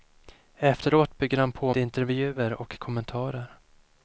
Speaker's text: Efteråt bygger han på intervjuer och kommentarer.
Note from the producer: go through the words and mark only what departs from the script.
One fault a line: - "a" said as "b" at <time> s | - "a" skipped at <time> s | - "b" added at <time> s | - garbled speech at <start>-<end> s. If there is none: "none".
none